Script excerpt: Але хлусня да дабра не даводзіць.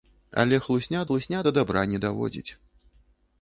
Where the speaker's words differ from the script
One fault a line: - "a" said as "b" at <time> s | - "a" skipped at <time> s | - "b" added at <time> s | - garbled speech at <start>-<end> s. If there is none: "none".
- "хлусня" added at 1.1 s